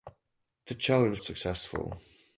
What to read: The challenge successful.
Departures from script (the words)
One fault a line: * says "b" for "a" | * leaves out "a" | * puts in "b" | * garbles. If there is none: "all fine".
all fine